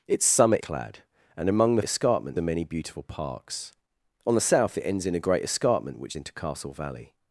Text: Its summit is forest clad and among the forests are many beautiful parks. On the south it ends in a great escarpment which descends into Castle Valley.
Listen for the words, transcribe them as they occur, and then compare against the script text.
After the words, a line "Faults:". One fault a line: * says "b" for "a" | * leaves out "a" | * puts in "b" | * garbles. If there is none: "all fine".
Its summit clad and among the escarpment are many beautiful parks. On the south it ends in a great escarpment which into Castle Valley.
Faults:
* leaves out "is forest"
* says "escarpment" for "forests"
* leaves out "descends"